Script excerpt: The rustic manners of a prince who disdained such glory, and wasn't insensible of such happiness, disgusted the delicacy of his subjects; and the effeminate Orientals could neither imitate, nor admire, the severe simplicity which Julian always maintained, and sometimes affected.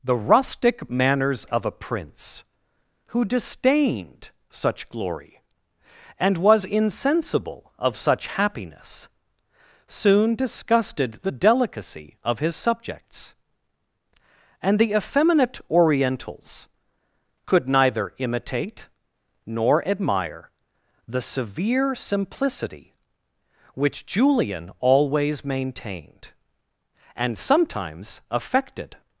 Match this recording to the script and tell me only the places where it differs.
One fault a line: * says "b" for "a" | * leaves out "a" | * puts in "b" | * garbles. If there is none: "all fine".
* says "was" for "wasn't"
* puts in "soon"